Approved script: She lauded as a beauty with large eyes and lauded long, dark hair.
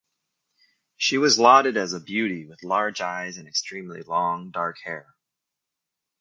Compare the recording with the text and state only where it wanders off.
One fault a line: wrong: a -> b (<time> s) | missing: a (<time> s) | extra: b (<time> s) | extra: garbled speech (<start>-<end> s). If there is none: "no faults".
extra: was (1.2 s)
wrong: lauded -> extremely (3.5 s)